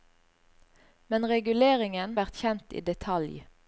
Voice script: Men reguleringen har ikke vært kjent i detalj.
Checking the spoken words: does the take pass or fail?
fail